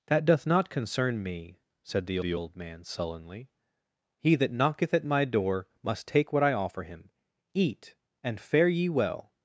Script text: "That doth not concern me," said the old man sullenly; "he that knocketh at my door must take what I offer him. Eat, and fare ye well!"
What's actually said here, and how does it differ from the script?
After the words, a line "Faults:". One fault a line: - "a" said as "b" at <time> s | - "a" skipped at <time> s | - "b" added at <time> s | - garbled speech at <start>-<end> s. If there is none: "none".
"That doth not concern me," said the the old man sullenly; "he that knocketh at my door must take what I offer him. Eat, and fare ye well!"
Faults:
- "the" added at 2.2 s